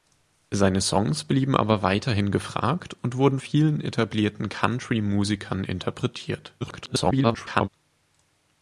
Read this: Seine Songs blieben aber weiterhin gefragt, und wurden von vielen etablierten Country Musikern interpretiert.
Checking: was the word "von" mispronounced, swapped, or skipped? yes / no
yes